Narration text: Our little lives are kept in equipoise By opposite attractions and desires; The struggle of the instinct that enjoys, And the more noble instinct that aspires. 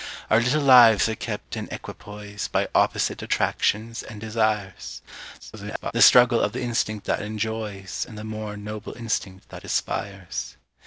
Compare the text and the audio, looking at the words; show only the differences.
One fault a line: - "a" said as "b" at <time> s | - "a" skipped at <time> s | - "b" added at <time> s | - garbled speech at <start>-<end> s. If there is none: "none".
- garbled speech at 5.4-5.9 s